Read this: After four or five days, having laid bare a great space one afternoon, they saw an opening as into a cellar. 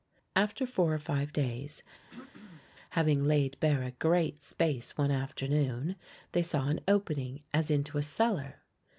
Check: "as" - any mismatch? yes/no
no